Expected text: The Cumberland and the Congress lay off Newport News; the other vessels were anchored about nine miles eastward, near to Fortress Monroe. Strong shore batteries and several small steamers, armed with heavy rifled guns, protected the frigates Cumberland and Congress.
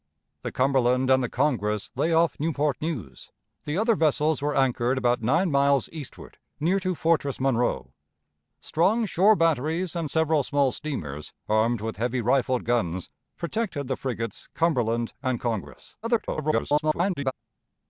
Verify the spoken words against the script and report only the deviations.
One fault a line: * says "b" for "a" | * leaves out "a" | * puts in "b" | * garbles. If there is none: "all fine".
* garbles